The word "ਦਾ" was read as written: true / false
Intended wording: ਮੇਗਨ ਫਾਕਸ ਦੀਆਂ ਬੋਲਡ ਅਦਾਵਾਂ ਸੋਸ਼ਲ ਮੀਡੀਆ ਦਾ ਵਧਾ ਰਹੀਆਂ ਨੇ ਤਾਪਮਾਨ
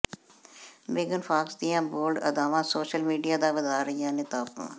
true